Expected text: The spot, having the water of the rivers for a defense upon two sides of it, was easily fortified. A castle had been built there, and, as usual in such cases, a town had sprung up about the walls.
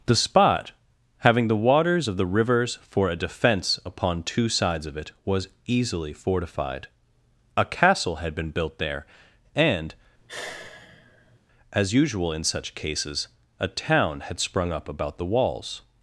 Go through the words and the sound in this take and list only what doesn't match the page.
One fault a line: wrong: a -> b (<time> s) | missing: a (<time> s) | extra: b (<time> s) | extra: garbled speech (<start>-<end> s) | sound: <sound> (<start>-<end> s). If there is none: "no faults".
wrong: water -> waters (1.6 s)
sound: sigh (10.2-11.4 s)